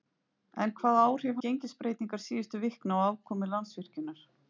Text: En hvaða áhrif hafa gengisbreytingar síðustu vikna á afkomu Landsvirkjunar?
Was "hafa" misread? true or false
true